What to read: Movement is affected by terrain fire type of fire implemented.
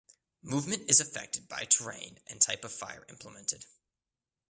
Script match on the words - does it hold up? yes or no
no